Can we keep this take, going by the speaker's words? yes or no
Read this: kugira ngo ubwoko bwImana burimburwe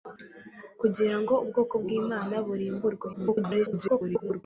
no